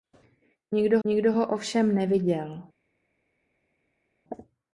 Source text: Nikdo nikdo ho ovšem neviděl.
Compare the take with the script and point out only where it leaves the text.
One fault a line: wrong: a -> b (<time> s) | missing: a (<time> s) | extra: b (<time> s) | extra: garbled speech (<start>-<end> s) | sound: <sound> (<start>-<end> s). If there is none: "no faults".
no faults